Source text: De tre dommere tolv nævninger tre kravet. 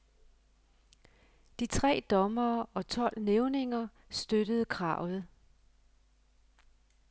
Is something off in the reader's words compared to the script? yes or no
yes